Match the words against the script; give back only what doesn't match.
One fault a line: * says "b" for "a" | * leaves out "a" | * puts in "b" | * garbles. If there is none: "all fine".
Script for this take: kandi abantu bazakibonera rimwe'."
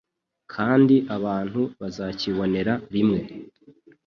all fine